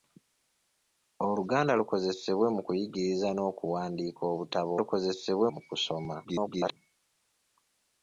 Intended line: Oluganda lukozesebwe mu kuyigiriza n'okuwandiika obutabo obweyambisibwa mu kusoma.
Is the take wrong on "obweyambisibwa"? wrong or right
wrong